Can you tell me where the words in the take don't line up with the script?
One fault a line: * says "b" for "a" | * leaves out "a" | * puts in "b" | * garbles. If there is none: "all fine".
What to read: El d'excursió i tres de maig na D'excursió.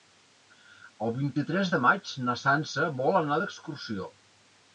* says "vint" for "d'excursió"
* puts in "Sança vol anar"